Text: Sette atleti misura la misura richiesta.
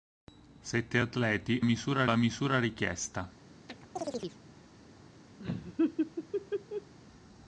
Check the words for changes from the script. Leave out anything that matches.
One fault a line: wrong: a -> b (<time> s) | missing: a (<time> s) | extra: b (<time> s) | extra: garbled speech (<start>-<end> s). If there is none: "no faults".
no faults